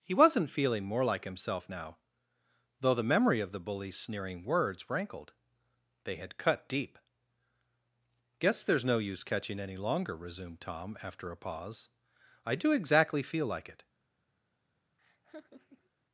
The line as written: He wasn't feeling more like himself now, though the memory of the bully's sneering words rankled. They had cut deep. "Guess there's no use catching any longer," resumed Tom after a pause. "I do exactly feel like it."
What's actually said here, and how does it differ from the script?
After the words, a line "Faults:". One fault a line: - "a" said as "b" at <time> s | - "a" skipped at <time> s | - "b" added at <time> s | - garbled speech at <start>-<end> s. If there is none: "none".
He wasn't feeling more like himself now, though the memory of the bully's sneering words rankled. They had cut deep. "Guess there's no use catching any longer," resumed Tom after a pause. "I do exactly feel like it."
Faults:
none